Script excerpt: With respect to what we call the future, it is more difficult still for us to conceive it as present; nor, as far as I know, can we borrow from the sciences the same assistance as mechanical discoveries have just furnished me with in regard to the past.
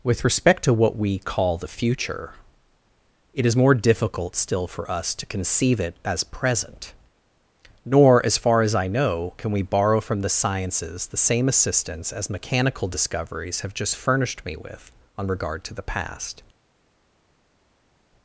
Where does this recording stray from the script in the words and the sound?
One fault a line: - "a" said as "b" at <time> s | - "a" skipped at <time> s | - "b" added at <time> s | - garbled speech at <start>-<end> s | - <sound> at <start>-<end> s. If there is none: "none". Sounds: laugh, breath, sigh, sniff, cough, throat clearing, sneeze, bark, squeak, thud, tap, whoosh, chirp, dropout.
- "in" said as "on" at 15.2 s